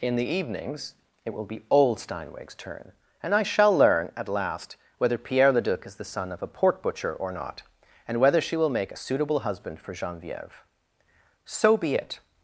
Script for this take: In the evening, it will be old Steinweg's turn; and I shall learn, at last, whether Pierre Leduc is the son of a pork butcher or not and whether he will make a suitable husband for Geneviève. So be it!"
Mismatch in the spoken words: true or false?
true